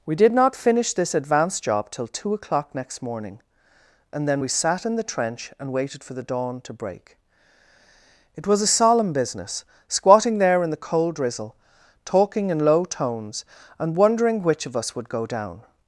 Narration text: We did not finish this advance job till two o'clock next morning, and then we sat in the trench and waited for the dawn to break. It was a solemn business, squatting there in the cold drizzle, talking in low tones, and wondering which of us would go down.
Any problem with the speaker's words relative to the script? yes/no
no